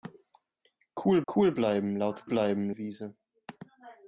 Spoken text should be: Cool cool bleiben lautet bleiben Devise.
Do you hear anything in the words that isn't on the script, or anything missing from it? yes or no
no